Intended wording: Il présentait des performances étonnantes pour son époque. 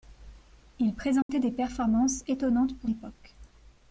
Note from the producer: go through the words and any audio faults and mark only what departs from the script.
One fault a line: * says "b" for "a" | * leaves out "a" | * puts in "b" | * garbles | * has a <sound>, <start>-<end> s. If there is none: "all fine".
* has a dropout, 1.2-1.3 s
* leaves out "son"